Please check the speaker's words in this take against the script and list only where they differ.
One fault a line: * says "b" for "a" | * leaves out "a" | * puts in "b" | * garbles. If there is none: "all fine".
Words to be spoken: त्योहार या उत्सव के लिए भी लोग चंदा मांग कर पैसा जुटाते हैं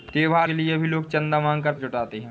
* leaves out "या उत्सव"
* leaves out "पैसा"